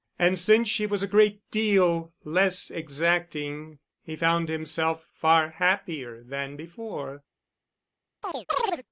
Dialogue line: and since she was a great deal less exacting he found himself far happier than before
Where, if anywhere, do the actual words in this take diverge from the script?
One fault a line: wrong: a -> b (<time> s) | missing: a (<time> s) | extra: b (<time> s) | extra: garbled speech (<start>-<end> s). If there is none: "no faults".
no faults